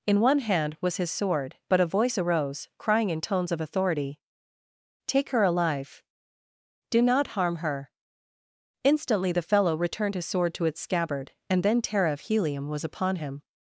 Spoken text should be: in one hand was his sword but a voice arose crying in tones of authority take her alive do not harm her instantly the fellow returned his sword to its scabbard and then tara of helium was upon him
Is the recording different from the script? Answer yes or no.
no